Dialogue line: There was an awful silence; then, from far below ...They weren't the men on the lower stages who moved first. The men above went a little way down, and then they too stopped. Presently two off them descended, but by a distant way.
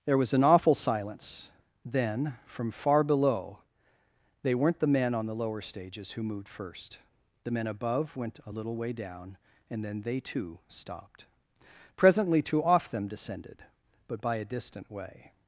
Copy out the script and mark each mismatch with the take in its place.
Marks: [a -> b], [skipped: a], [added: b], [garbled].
There was an awful silence; then, from far below ...They weren't the men on the lower stages who moved first. The men above went a little way down, and then they too stopped. Presently two off them descended, but by a distant way.